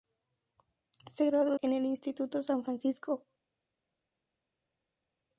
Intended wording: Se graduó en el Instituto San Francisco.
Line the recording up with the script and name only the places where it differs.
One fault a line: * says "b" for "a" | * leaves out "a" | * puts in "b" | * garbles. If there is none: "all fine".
all fine